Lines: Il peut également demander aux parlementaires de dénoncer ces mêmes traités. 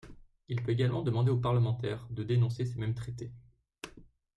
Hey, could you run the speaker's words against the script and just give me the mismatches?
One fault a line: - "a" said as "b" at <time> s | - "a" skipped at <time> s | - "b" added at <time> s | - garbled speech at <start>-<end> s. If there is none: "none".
none